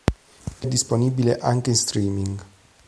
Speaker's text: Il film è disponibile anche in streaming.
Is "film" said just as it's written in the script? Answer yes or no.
no